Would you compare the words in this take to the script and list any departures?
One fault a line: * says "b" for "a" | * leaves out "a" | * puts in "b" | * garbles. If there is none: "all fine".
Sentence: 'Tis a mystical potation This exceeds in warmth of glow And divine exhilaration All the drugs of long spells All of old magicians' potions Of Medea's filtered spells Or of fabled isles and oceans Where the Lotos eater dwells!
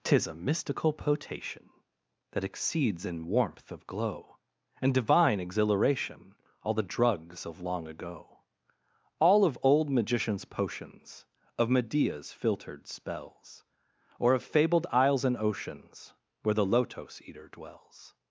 * says "That" for "This"
* says "ago" for "spells"